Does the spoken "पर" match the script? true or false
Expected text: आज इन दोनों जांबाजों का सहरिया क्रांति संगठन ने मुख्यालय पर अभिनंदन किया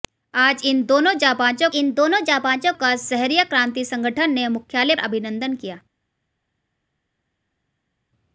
false